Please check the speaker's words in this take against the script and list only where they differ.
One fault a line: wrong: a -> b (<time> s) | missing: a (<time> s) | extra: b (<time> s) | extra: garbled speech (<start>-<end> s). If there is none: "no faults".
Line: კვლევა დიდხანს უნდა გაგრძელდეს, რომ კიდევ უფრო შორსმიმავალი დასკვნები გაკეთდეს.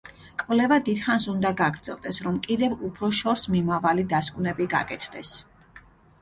no faults